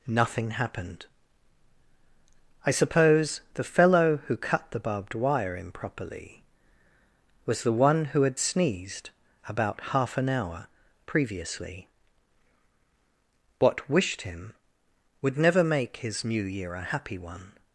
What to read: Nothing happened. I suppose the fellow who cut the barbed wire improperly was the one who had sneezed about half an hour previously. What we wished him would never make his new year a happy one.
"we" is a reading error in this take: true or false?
true